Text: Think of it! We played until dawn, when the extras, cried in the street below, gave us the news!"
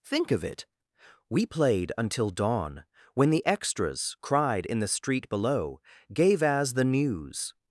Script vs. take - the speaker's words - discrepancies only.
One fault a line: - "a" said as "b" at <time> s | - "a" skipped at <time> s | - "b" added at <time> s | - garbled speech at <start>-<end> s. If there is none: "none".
- "us" said as "as" at 6.4 s